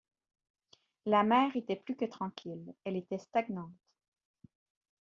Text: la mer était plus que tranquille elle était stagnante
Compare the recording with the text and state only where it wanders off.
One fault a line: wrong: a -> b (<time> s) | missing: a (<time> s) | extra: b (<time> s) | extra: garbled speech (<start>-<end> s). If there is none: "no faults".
no faults